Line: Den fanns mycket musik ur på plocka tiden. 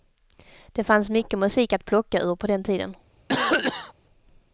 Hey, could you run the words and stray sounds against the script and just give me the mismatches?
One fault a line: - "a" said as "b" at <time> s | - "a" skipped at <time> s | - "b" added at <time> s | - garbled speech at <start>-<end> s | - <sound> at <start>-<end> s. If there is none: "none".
- "Den" said as "Det" at 0.7 s
- "att plocka" added at 1.7 s
- "plocka" said as "den" at 2.5 s
- cough at 3.3-3.9 s